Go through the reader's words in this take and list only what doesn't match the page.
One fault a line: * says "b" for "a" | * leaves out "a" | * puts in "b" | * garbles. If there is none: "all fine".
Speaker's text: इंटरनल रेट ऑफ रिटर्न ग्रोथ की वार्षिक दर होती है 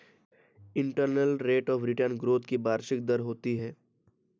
all fine